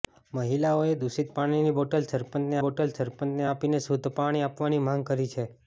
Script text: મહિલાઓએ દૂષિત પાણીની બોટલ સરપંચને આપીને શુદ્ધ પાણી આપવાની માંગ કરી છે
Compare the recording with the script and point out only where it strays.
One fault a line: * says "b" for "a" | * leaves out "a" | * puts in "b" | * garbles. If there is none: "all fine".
* puts in "બોટલ સરપંચને"